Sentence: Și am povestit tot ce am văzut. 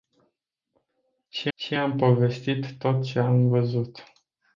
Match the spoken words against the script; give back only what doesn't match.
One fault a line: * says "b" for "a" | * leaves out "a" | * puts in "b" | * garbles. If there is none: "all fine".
* puts in "și"